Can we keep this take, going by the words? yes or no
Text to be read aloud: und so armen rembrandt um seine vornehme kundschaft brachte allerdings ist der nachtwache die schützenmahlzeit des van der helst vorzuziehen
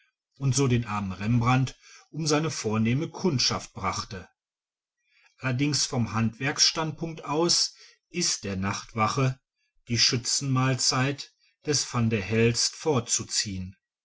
no